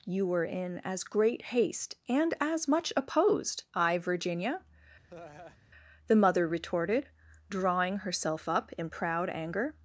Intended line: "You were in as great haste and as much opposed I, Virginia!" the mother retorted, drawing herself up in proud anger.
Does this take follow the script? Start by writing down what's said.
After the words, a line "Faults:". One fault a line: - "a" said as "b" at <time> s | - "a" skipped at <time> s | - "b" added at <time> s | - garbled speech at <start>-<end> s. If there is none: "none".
"You were in as great haste and as much opposed I, Virginia!" the mother retorted, drawing herself up in proud anger.
Faults:
none